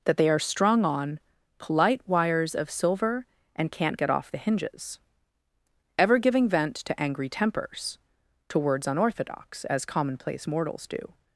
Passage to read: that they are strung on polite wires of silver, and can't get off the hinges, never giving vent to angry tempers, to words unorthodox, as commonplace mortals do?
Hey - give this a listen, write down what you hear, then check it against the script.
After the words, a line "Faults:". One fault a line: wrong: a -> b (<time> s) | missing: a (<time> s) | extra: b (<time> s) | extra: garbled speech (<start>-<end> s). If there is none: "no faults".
that they are strung on polite wires of silver, and can't get off the hinges, ever giving vent to angry tempers, to words unorthodox, as commonplace mortals do?
Faults:
wrong: never -> ever (6.0 s)